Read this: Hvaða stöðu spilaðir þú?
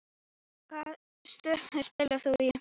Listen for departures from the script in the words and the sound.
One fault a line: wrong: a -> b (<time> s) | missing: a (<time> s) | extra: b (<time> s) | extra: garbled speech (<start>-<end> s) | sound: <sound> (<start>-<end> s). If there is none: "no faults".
sound: dropout (1.9-2.0 s)